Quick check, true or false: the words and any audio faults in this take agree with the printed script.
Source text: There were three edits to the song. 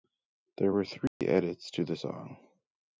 false